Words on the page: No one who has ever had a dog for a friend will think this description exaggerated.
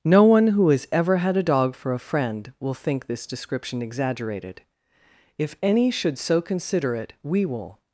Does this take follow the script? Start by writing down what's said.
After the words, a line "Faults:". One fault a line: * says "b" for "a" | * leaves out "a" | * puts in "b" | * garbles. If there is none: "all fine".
No one who has ever had a dog for a friend will think this description exaggerated. If any should so consider it, we will
Faults:
* puts in "If any should so consider it we will"